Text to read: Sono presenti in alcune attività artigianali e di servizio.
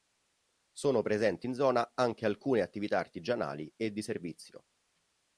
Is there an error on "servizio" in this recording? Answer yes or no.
no